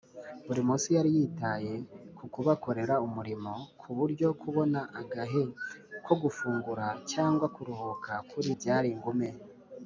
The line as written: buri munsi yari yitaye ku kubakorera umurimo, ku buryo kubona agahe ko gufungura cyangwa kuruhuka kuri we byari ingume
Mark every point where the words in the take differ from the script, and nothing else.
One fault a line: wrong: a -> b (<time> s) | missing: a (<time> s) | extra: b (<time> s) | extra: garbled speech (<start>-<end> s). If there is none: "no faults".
missing: we (8.5 s)